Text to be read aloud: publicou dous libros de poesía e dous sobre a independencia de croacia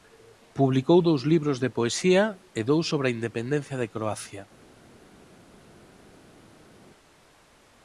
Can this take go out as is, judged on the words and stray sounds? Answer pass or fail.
pass